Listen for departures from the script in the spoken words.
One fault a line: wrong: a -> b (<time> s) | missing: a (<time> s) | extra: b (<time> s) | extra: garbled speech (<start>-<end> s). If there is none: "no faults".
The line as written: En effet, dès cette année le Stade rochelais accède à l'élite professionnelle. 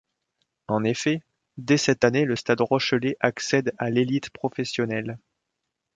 no faults